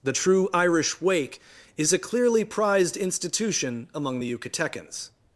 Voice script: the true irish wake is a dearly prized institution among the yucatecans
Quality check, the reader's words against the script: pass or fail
fail